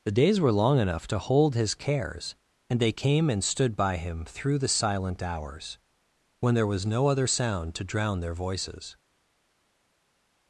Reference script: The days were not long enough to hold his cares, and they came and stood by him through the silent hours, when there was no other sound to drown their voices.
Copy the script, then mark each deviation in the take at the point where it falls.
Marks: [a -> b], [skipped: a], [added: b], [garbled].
The days were [skipped: not] long enough to hold his cares, and they came and stood by him through the silent hours, when there was no other sound to drown their voices.